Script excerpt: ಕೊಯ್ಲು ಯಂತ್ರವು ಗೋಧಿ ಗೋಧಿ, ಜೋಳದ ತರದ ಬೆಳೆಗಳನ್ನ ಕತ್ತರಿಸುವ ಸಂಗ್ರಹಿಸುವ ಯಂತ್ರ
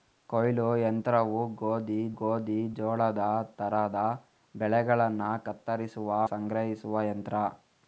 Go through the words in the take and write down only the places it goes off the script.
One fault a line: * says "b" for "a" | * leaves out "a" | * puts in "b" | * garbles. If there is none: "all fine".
all fine